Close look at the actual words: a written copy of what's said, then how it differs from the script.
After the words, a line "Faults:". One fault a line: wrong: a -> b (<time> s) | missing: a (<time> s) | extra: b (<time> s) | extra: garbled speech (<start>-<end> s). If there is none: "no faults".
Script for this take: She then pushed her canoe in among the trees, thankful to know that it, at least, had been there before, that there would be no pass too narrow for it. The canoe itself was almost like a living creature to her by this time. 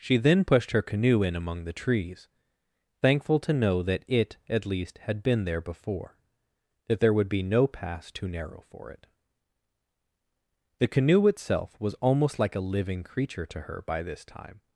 She then pushed her canoe in among the trees, thankful to know that it, at least, had been there before, that there would be no pass too narrow for it. The canoe itself was almost like a living creature to her by this time.
Faults:
no faults